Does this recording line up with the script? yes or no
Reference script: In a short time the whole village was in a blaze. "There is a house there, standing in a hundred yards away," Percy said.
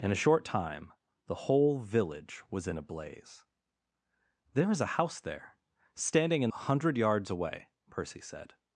yes